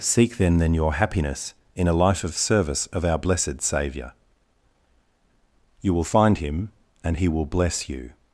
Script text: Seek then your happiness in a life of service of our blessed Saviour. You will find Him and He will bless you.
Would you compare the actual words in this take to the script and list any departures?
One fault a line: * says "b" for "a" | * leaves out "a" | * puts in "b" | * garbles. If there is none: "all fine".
* puts in "then"